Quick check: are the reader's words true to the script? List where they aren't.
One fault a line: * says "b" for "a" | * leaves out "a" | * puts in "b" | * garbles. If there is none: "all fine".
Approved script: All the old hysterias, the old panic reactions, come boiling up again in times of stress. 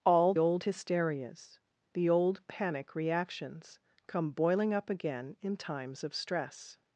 * leaves out "the"